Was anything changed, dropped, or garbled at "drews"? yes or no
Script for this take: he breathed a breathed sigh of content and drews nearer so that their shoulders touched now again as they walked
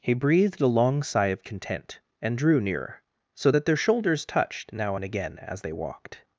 yes